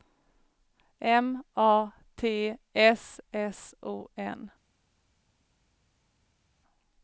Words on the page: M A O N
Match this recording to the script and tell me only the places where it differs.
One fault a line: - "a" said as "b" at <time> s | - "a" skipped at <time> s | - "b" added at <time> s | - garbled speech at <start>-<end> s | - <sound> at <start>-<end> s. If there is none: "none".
- "T S S" added at 2.2 s